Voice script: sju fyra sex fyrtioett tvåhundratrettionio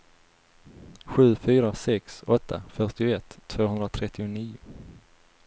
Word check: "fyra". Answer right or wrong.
right